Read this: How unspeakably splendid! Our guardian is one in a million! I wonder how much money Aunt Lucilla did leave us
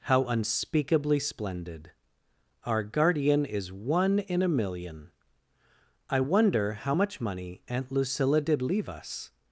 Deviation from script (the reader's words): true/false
false